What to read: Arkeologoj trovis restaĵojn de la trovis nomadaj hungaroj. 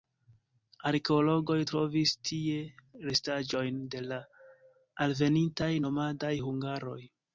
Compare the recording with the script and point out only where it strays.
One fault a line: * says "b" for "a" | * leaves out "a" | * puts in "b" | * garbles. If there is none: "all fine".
* puts in "tie"
* says "alvenintaj" for "trovis"